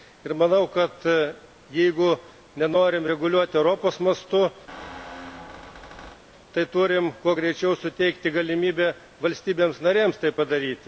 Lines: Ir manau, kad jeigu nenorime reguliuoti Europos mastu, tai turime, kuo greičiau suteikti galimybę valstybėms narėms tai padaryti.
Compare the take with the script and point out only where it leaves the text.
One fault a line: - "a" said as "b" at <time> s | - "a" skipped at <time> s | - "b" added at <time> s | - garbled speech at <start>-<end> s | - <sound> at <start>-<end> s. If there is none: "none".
- squeak at 4.7-6.2 s